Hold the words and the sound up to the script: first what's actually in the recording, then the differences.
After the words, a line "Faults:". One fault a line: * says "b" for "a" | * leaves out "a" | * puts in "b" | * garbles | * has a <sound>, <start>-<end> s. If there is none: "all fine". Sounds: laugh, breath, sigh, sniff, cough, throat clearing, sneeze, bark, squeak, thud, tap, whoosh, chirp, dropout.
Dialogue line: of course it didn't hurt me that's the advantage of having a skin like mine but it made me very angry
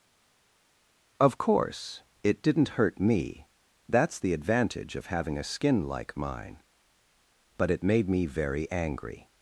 of course it didn't hurt me that's the advantage of having a skin like mine but it made me very angry
Faults:
all fine